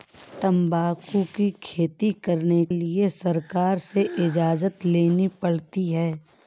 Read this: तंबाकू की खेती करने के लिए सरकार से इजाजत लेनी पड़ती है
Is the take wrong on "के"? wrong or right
wrong